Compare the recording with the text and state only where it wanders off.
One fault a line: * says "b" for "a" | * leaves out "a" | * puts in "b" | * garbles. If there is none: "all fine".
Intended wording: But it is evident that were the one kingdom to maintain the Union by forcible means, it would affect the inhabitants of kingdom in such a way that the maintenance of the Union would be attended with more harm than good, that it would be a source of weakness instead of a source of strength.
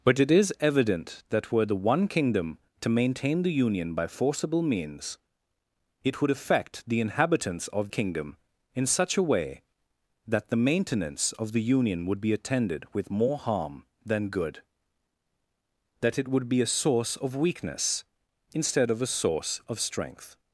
all fine